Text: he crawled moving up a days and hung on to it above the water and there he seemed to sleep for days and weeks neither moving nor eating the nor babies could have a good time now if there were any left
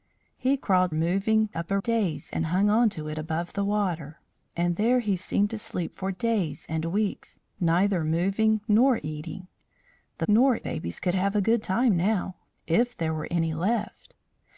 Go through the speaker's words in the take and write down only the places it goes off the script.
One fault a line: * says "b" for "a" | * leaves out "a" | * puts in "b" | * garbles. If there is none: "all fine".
all fine